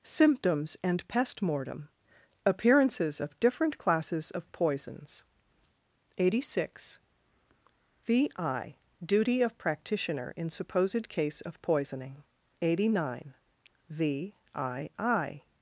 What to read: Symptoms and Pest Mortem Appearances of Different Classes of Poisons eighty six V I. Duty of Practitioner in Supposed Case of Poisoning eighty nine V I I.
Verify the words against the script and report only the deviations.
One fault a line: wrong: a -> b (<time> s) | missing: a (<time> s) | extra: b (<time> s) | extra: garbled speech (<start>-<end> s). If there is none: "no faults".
no faults